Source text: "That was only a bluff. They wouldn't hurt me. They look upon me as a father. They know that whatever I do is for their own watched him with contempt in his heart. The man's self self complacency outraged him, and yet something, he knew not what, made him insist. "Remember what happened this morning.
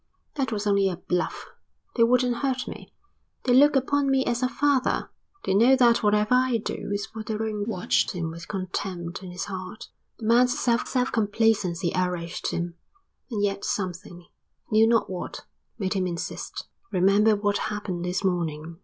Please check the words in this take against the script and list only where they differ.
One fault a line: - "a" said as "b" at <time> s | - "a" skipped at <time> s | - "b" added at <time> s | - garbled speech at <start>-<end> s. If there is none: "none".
none